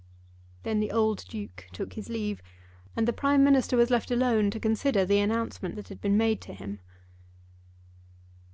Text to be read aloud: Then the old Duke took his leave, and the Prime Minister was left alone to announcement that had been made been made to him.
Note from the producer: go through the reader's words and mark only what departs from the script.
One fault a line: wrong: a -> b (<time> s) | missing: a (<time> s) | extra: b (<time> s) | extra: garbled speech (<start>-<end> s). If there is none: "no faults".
extra: consider the (4.6 s)
missing: been made (6.4 s)